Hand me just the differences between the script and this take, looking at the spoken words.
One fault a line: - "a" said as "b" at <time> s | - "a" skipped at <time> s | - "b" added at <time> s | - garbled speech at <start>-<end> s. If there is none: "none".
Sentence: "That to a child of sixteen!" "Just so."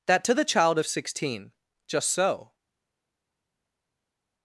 - "a" said as "the" at 0.3 s